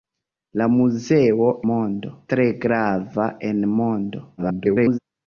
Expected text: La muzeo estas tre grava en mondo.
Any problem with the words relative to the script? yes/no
yes